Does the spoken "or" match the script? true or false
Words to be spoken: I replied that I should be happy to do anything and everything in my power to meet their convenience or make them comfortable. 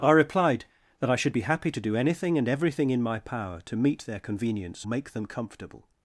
false